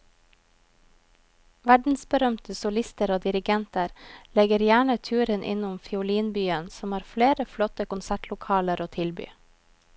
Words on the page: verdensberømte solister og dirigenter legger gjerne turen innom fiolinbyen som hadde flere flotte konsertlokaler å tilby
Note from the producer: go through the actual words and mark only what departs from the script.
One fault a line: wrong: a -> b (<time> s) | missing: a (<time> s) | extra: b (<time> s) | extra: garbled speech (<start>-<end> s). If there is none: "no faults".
wrong: hadde -> har (7.0 s)